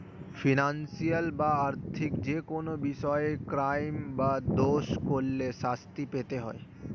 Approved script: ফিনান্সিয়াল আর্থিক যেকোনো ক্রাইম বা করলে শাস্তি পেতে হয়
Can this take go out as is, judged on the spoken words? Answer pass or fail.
fail